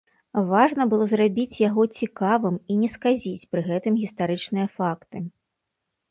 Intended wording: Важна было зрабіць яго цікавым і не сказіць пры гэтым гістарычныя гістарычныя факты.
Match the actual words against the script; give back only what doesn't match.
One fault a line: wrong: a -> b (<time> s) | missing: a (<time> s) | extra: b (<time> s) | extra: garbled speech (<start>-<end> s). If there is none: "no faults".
missing: гістарычныя (4.7 s)